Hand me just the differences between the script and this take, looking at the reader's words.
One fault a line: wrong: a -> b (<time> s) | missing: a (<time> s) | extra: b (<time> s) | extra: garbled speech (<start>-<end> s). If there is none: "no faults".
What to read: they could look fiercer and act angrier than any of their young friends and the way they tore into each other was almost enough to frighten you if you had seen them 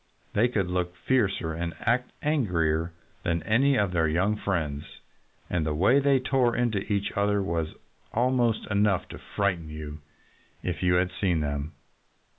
no faults